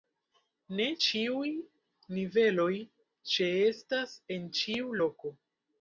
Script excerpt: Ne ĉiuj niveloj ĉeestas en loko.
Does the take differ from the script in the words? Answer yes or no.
yes